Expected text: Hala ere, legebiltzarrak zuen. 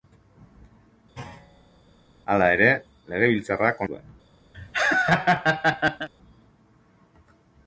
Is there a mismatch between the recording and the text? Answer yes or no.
no